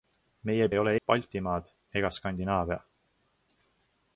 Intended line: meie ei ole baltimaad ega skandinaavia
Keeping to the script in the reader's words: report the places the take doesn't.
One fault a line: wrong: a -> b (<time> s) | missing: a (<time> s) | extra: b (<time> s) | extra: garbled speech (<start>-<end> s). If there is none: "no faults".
no faults